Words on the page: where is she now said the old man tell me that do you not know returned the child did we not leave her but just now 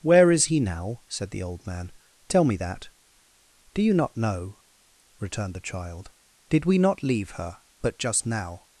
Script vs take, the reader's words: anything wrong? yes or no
yes